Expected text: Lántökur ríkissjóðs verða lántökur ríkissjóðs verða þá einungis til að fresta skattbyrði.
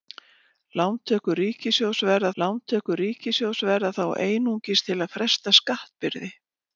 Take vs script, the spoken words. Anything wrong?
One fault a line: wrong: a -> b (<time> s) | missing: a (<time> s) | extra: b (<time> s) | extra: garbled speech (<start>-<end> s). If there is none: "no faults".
no faults